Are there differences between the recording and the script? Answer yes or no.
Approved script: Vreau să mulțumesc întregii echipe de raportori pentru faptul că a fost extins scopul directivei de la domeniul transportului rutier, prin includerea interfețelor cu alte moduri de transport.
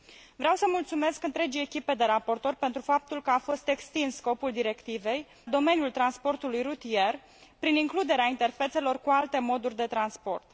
yes